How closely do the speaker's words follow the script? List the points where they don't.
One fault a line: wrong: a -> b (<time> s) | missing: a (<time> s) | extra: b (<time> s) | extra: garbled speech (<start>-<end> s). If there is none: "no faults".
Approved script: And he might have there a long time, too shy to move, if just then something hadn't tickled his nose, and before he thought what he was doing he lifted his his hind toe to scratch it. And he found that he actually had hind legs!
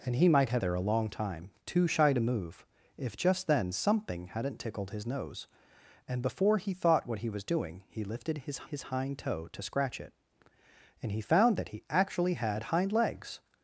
no faults